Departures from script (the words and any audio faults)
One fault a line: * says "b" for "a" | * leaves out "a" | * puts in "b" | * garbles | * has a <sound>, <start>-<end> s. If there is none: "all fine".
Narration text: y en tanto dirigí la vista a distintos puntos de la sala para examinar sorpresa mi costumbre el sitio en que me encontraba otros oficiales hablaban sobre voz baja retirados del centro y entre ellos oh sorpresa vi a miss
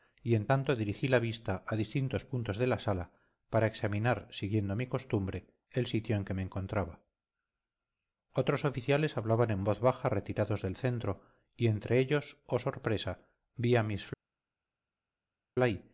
* says "siguiendo" for "sorpresa"
* says "en" for "sobre"